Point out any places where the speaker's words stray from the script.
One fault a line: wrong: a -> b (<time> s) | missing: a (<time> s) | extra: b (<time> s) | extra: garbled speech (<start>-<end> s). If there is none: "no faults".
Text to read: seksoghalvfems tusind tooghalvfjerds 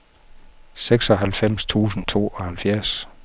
no faults